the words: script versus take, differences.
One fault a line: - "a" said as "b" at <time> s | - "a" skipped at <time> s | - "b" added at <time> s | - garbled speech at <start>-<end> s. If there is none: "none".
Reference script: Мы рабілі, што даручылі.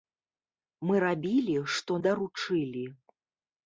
none